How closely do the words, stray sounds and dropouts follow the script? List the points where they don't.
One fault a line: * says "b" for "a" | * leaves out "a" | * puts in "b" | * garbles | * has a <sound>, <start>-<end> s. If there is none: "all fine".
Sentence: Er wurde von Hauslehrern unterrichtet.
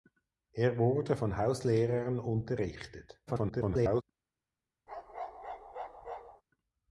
* garbles
* has a bark, 4.9-6.4 s